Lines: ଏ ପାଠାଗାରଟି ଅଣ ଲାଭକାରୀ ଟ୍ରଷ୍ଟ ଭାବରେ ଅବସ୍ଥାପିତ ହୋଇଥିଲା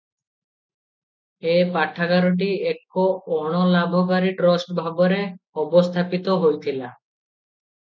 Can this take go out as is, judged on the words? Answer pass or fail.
fail